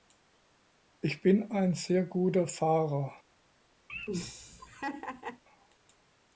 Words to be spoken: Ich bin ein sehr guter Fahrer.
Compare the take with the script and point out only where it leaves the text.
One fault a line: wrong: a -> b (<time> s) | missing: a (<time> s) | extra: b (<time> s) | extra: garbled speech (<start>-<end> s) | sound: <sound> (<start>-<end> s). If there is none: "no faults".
sound: laugh (3.9-5.4 s)